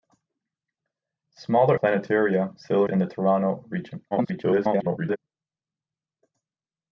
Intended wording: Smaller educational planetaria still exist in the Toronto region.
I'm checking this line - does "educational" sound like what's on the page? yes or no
no